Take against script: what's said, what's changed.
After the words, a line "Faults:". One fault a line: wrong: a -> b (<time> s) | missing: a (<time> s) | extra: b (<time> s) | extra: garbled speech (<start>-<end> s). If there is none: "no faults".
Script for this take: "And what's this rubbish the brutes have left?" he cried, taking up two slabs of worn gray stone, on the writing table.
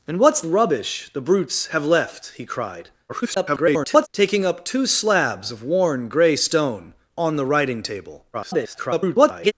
"And what's rubbish the brutes have left?" he cried, [garbled] taking up two slabs of worn gray stone, on the writing table. [garbled]
Faults:
missing: this (0.4 s)
extra: garbled speech (3.1-4.1 s)
extra: garbled speech (8.3-9.5 s)